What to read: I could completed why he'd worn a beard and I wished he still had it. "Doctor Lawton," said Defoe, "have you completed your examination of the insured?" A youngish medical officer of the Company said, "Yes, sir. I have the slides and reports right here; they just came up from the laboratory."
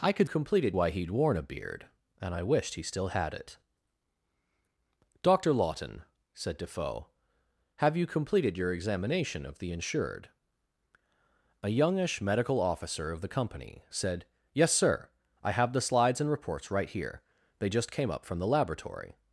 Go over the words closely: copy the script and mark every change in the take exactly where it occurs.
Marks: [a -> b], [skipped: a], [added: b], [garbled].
I could completed why he'd worn a beard and I wished he still had it. "Doctor Lawton," said Defoe, "have you completed your examination of the insured?" A youngish medical officer of the Company said, "Yes, sir. I have the slides and reports right here; they just came up from the laboratory."